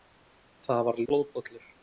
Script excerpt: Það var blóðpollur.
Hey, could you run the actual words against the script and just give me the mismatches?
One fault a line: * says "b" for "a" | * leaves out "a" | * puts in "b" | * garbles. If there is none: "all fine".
all fine